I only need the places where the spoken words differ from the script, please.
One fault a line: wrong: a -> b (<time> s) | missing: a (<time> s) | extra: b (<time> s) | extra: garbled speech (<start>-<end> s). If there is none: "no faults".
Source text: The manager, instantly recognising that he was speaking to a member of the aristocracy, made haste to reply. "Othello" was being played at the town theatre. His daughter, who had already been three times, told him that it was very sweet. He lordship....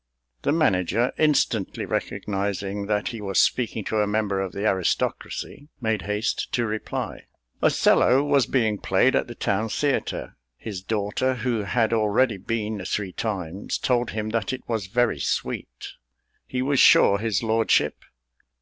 extra: was sure his (16.6 s)